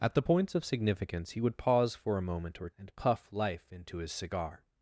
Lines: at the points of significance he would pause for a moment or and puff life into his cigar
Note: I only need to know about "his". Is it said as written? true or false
true